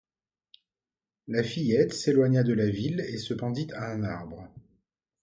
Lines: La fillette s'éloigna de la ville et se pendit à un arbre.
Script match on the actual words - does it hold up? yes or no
yes